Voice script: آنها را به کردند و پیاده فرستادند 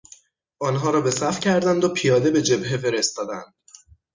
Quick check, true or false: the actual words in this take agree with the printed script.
false